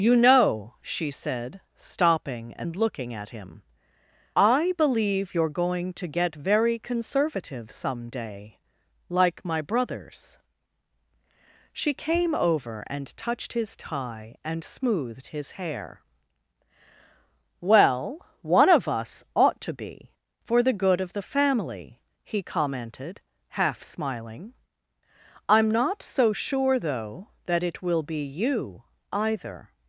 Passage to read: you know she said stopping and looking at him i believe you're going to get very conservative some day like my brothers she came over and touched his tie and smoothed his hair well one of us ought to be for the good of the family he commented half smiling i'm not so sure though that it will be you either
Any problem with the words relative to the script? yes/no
no